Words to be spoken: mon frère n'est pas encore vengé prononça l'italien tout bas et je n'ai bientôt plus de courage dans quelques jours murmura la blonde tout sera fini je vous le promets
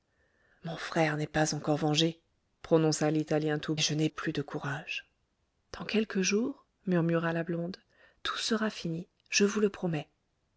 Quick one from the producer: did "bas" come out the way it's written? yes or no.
no